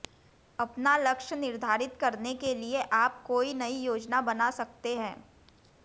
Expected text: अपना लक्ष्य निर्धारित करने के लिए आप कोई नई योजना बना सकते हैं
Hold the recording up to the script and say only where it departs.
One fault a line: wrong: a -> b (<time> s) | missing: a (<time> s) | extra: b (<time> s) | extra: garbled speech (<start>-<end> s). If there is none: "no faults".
no faults